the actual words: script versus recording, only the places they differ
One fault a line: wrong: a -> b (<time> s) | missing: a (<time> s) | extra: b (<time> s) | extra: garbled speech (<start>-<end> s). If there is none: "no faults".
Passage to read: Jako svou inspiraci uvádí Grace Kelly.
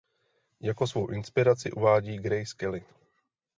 no faults